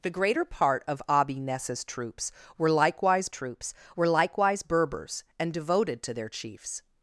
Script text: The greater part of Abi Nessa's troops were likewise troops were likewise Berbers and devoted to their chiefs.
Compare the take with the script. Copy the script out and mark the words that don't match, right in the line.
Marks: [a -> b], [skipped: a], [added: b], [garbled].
The greater part of Abi Nessa's troops were likewise troops were likewise Berbers and devoted to their chiefs.